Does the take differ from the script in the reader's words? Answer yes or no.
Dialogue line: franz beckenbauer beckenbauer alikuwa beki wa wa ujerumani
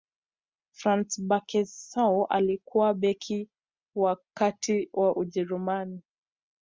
yes